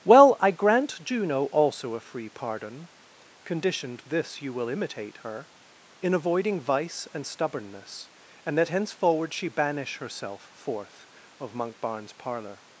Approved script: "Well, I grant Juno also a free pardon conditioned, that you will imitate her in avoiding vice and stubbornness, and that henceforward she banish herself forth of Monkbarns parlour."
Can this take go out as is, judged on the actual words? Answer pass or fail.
fail